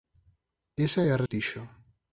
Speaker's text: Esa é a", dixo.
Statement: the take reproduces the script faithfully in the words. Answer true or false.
true